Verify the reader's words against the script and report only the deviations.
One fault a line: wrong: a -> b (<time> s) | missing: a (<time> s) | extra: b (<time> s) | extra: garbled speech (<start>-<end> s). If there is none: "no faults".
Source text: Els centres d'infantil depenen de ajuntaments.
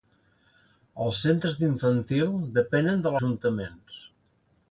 no faults